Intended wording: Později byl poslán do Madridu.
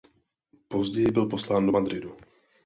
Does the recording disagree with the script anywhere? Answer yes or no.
no